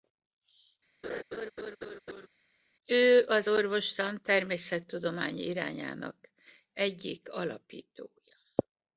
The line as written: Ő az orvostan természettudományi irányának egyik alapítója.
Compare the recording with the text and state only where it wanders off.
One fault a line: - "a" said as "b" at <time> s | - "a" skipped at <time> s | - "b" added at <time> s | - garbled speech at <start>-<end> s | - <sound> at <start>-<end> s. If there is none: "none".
- laugh at 1.0-2.3 s